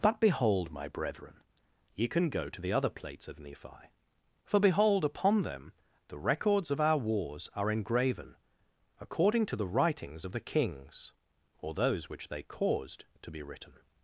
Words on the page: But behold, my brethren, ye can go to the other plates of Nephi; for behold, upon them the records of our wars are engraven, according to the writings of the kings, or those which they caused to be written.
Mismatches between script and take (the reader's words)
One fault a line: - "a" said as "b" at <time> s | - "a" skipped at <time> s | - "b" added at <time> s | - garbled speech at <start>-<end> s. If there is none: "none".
none